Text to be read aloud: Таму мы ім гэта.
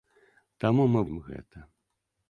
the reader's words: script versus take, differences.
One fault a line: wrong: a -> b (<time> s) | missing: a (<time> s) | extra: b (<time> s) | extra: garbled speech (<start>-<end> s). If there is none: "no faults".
no faults